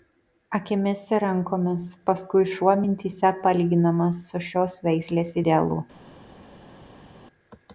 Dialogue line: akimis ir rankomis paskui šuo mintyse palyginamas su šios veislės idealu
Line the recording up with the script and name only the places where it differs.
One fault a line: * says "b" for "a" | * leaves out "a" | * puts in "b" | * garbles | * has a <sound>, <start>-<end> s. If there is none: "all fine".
all fine